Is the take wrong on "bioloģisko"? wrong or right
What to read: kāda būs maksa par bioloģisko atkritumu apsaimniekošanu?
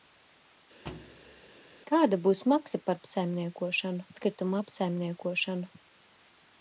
wrong